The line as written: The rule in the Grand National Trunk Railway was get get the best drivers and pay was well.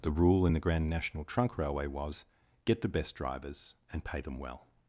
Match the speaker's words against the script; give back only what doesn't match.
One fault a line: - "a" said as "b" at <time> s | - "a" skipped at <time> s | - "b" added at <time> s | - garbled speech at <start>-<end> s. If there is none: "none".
- "get" skipped at 2.8 s
- "was" said as "them" at 4.2 s